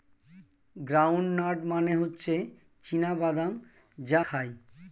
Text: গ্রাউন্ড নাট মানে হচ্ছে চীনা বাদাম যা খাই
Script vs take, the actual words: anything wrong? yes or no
no